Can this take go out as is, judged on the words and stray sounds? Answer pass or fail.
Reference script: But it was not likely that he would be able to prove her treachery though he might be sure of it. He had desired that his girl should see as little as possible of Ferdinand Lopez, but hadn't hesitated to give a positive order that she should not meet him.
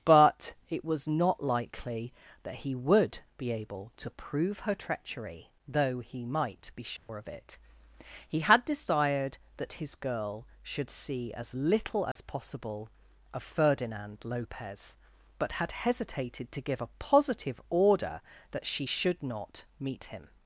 fail